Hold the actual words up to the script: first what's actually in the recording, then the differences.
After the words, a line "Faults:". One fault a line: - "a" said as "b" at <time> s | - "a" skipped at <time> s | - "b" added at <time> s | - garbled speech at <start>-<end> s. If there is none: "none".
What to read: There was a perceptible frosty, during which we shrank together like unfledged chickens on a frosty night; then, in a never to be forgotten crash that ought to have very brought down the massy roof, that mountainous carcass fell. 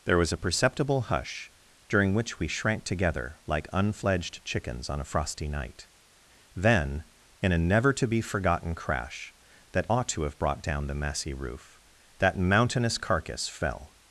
There was a perceptible hush, during which we shrank together like unfledged chickens on a frosty night; then, in a never to be forgotten crash that ought to have brought down the massy roof, that mountainous carcass fell.
Faults:
- "frosty" said as "hush" at 1.0 s
- "very" skipped at 10.4 s